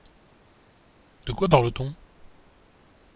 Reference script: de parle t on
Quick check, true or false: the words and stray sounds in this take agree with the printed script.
false